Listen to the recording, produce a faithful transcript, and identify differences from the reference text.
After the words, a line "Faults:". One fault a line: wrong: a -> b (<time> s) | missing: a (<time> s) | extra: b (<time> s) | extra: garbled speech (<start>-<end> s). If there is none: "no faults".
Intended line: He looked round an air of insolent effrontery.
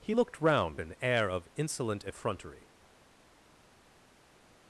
He looked round an air of insolent effrontery.
Faults:
no faults